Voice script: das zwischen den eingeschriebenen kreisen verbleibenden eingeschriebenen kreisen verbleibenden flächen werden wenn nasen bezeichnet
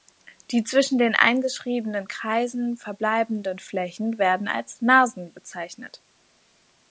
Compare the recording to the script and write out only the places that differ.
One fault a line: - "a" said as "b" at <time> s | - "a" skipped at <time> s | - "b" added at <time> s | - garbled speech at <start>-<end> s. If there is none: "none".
- "das" said as "die" at 0.5 s
- "eingeschriebenen kreisen verbleibenden" skipped at 3.6 s
- "wenn" said as "als" at 4.5 s